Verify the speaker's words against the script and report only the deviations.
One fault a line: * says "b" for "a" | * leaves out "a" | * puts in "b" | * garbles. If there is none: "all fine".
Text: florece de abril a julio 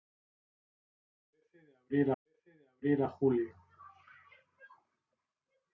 * puts in "florece de abril"